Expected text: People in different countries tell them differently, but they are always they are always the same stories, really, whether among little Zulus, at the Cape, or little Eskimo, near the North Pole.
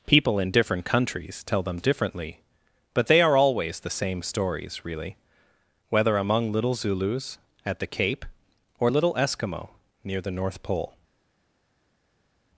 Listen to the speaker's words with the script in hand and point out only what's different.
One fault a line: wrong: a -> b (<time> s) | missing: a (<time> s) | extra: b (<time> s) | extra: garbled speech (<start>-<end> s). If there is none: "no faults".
missing: they are always (3.8 s)